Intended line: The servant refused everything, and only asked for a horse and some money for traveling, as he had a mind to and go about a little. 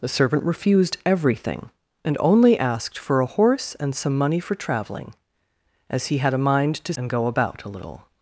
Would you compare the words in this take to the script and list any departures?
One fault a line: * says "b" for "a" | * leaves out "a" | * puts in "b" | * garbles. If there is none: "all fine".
all fine